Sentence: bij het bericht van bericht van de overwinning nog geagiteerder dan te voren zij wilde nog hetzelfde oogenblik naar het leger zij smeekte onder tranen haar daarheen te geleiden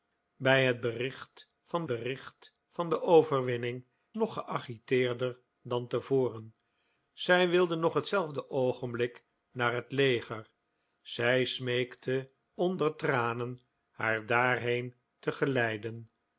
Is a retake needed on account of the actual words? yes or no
no